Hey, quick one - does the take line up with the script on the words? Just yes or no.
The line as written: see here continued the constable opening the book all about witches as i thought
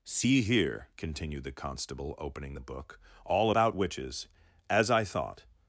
yes